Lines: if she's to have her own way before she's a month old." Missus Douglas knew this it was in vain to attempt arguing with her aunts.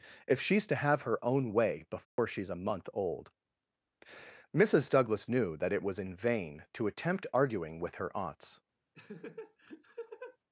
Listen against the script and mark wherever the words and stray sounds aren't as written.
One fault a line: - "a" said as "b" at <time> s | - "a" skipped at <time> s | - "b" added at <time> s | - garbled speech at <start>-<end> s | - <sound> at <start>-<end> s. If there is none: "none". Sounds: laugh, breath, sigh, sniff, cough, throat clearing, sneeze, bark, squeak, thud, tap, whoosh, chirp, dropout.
- dropout at 2.0-2.2 s
- "this" said as "that" at 5.6 s
- laugh at 8.9-10.4 s